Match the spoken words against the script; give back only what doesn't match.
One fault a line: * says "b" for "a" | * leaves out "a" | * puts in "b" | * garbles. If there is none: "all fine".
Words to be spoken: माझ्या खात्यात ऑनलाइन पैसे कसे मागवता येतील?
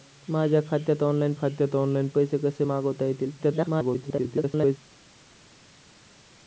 * puts in "खात्यात ऑनलाइन"
* garbles